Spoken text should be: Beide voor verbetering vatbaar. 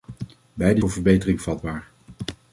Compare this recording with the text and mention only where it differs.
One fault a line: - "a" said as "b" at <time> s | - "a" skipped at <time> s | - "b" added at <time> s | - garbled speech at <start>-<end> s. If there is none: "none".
none